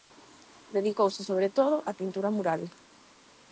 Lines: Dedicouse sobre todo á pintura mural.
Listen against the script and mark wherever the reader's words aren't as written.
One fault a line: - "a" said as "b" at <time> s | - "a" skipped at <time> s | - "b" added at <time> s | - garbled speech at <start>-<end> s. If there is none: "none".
none